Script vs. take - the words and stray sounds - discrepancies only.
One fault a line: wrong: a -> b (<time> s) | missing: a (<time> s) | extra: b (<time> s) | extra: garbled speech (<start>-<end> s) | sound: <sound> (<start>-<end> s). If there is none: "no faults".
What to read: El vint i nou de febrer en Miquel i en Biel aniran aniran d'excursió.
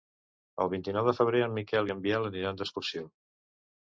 missing: aniran (2.6 s)